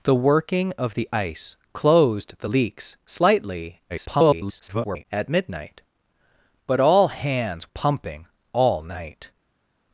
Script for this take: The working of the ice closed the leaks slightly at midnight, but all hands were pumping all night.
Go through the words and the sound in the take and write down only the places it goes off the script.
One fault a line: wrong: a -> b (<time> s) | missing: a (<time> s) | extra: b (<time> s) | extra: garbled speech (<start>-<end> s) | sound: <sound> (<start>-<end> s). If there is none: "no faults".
extra: garbled speech (3.9-5.1 s)
missing: were (7.7 s)